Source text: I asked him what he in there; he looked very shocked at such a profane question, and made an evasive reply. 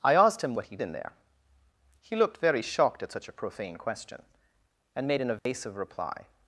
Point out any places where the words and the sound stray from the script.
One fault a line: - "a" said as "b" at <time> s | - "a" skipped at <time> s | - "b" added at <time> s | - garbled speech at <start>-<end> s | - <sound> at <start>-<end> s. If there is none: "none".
- dropout at 5.4-5.5 s